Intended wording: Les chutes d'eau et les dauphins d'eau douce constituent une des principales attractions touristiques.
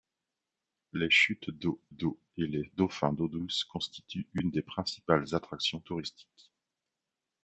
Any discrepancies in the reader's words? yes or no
yes